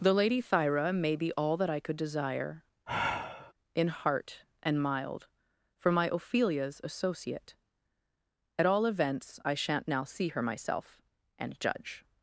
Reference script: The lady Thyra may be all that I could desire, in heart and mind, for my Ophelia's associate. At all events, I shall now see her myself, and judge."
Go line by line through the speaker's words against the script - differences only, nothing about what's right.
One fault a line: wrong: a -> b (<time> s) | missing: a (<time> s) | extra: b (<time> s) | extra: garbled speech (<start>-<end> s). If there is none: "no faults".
wrong: mind -> mild (4.8 s)
wrong: shall -> shan't (9.5 s)